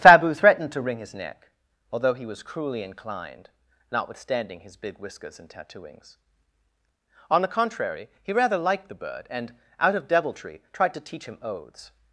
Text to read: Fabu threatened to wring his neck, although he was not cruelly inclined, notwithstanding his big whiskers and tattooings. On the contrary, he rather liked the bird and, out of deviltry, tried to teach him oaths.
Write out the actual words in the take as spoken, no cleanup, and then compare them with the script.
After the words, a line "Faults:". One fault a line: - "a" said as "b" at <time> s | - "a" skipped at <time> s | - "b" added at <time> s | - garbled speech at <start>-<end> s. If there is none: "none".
Fabu threatened to wring his neck, although he was cruelly inclined, notwithstanding his big whiskers and tattooings. On the contrary, he rather liked the bird and, out of deviltry, tried to teach him oaths.
Faults:
- "not" skipped at 2.4 s